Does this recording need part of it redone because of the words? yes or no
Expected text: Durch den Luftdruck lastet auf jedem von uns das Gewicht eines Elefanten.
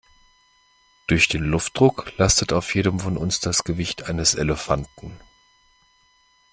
no